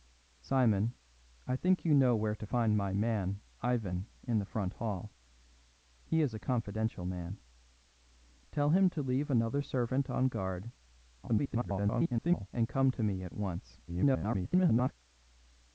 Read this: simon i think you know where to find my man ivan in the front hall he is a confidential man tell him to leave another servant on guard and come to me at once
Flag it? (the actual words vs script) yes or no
yes